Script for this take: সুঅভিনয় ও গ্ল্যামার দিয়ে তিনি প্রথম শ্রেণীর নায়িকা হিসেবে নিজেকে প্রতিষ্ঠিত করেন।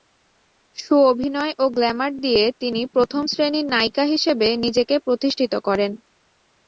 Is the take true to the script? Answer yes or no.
yes